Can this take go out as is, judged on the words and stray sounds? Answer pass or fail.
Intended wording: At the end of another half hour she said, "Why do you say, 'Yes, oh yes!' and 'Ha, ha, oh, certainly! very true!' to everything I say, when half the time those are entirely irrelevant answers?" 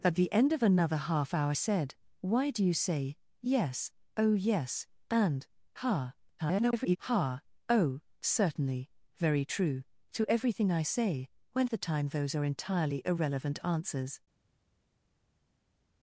fail